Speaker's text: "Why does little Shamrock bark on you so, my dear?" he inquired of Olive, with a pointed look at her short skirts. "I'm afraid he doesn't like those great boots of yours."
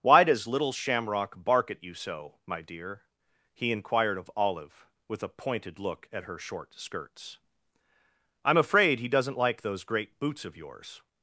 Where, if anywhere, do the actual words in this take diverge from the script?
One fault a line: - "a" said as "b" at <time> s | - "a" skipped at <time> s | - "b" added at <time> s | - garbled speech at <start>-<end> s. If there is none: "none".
- "on" said as "at" at 1.7 s